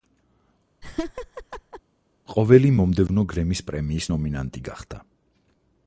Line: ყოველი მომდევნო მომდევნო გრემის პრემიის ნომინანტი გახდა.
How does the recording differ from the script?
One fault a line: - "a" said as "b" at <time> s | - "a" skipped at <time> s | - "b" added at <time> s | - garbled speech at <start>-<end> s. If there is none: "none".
- "მომდევნო" skipped at 3.3 s